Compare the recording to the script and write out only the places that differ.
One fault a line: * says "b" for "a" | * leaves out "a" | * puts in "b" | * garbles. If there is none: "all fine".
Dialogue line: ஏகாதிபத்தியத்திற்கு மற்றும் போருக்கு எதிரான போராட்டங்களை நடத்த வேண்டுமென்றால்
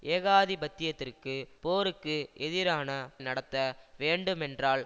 * leaves out "மற்றும்"
* leaves out "போராட்டங்களை"